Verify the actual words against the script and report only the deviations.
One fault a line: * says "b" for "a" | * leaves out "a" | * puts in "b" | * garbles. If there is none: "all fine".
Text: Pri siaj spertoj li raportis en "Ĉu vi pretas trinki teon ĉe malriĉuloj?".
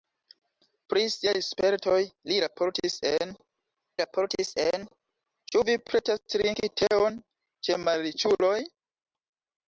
* puts in "raportis en"